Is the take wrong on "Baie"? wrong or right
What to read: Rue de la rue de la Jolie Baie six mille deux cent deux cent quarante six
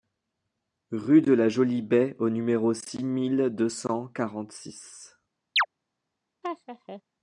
wrong